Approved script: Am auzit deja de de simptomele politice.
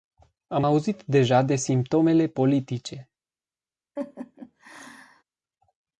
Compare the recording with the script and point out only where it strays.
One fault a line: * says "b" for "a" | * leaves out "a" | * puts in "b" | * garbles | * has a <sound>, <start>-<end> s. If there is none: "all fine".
* leaves out "de"
* has a laugh, 4.0-5.2 s